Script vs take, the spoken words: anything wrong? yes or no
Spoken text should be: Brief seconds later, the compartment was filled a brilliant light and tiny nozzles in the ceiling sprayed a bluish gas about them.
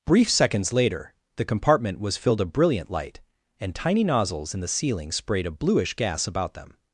no